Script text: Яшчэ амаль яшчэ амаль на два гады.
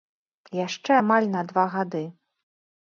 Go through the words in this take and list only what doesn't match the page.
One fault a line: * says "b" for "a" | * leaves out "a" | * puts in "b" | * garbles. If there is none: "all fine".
* leaves out "яшчэ амаль"